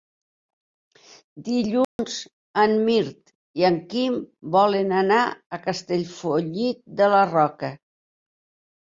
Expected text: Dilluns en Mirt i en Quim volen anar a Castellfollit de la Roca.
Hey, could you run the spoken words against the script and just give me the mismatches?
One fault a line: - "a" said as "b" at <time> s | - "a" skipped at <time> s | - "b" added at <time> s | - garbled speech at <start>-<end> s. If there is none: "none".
none